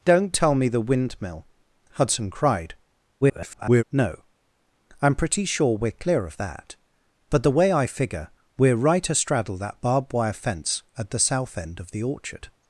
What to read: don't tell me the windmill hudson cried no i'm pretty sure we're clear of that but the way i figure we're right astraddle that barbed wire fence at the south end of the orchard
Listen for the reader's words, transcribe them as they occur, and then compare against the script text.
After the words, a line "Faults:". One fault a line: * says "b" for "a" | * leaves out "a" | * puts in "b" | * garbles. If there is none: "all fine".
don't tell me the windmill hudson cried [garbled] no i'm pretty sure we're clear of that but the way i figure we're right astraddle that barbed wire fence at the south end of the orchard
Faults:
* garbles